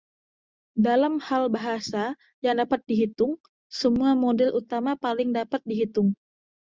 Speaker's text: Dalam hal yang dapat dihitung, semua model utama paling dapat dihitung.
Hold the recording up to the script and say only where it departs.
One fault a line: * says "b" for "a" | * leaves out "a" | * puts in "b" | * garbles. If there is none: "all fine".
* puts in "bahasa"